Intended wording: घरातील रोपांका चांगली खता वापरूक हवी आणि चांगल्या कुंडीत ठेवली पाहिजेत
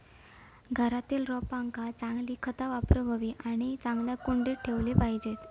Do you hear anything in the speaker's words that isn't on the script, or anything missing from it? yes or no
no